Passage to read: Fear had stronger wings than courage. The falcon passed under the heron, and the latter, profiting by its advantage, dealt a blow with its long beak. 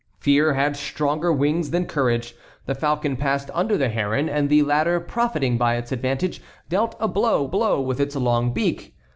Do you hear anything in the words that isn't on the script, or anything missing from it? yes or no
yes